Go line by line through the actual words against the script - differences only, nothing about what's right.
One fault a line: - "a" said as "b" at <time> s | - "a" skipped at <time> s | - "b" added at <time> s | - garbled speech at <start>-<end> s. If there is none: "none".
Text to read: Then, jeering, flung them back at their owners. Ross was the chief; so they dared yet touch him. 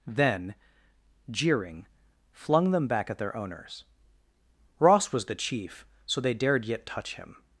none